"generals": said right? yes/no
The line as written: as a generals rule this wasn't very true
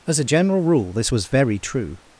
no